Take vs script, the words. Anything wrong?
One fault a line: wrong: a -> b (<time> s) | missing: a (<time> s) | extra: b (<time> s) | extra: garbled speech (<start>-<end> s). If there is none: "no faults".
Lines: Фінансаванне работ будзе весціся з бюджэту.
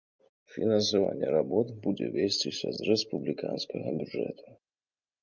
extra: рэспубліканскага (2.9 s)